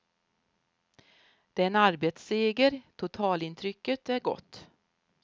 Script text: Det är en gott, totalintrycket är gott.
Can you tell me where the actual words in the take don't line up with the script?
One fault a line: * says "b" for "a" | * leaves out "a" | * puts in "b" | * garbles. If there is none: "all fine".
* says "arbetsseger" for "gott"